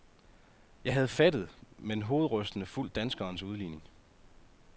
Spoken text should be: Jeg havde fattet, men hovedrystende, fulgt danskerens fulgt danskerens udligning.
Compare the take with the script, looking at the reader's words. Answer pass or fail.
fail